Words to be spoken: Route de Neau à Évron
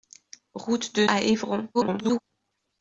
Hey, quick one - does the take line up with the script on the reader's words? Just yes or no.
no